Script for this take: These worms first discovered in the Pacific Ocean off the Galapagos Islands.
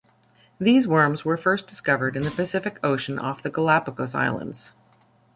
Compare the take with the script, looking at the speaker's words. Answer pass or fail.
fail